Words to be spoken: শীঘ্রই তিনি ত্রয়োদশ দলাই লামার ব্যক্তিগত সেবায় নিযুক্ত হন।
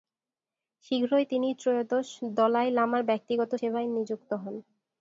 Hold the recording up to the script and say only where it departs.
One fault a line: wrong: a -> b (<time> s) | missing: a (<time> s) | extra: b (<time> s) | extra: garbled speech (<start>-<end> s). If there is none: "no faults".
no faults